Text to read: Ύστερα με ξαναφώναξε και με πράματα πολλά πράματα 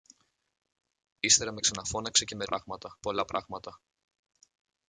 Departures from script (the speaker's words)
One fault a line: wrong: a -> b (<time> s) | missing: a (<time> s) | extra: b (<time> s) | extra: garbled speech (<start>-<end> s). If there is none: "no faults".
no faults